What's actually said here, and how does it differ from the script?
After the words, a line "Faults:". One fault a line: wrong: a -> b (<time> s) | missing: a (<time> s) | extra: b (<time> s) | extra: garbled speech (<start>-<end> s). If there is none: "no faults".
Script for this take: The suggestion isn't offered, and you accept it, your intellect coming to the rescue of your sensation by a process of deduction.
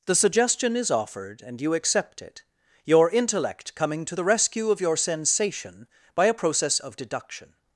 The suggestion is offered, and you accept it, your intellect coming to the rescue of your sensation by a process of deduction.
Faults:
wrong: isn't -> is (0.8 s)